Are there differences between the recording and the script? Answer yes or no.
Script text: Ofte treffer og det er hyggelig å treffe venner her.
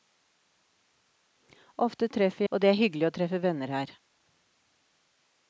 no